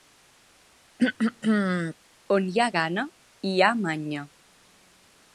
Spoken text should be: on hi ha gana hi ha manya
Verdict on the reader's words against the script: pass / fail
pass